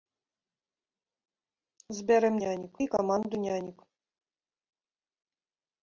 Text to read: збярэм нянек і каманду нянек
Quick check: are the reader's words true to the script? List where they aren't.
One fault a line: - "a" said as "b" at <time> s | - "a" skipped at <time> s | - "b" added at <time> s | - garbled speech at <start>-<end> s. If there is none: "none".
none